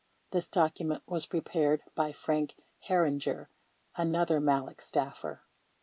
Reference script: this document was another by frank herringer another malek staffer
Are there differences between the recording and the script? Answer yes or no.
yes